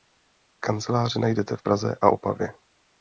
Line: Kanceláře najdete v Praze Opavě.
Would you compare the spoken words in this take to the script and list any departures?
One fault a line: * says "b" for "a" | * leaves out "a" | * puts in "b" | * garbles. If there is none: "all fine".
* puts in "a"